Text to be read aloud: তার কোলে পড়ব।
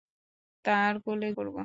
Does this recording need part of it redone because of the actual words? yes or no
no